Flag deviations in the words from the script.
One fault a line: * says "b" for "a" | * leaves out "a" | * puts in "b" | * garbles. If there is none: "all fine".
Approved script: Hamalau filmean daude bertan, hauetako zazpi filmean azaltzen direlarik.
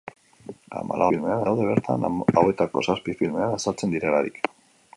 all fine